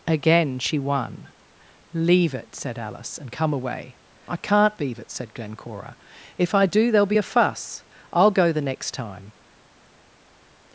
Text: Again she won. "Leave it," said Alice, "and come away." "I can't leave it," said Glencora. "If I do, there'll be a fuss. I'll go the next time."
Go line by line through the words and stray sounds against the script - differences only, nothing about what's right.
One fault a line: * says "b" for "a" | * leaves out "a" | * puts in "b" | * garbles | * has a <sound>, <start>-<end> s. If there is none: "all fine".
all fine